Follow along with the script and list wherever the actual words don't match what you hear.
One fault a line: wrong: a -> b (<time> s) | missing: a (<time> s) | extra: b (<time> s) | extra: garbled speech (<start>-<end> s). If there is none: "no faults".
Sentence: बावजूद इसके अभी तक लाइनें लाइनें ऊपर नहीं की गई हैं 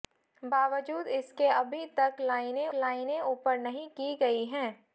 no faults